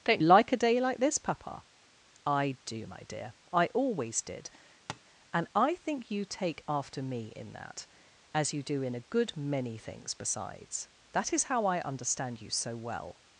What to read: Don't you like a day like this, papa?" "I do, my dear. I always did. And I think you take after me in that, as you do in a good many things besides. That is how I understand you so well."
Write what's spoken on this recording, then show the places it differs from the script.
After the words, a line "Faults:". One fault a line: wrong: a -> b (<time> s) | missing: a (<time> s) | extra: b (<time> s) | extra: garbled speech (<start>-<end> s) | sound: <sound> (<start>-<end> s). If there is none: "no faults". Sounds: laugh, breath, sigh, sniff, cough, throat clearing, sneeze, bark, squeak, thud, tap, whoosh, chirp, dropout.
Don't like a day like this, papa?" "I do, my dear. I always did. And I think you take after me in that, as you do in a good many things besides. That is how I understand you so well."
Faults:
missing: you (0.2 s)
sound: tap (4.9-5.0 s)